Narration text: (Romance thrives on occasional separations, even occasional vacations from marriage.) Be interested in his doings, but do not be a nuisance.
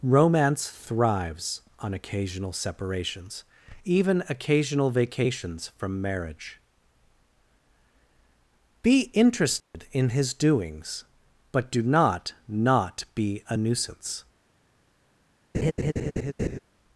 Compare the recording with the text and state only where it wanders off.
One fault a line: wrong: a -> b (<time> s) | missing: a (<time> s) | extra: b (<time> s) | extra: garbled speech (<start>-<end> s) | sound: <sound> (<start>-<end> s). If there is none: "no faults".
sound: dropout (9.6-9.7 s)
extra: not (12.5 s)
sound: laugh (15.5-16.6 s)